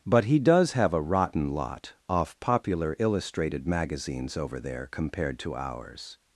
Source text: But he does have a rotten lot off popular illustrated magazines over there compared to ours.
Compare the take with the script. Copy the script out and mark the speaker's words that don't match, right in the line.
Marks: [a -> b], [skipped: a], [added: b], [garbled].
But he does have a rotten lot off popular illustrated magazines over there compared to ours.